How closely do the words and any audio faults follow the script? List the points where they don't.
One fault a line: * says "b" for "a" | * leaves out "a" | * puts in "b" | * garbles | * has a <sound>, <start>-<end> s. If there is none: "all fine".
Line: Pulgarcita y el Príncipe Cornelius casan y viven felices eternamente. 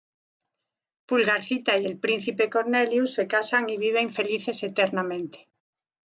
* puts in "se"